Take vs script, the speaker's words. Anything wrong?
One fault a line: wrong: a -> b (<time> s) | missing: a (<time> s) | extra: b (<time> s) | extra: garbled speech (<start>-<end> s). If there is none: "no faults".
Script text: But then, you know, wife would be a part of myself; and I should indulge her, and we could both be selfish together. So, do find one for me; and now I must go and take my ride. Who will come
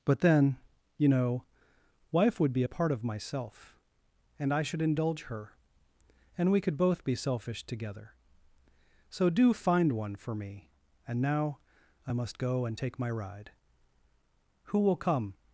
no faults